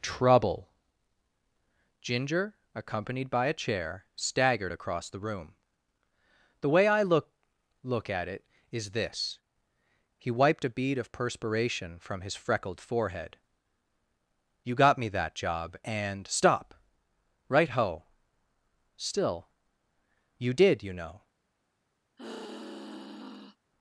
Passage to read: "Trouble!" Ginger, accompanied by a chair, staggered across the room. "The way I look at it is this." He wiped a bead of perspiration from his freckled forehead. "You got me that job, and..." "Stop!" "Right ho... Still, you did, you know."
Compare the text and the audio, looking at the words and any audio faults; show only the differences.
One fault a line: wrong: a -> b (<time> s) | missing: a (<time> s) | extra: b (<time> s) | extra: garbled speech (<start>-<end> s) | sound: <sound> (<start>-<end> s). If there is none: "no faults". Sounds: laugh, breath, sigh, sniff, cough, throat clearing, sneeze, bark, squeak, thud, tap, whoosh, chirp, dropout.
extra: look (7.8 s)
sound: sigh (22.2-23.6 s)